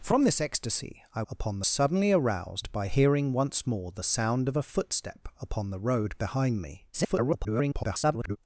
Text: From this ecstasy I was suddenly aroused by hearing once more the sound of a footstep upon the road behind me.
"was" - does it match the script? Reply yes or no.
no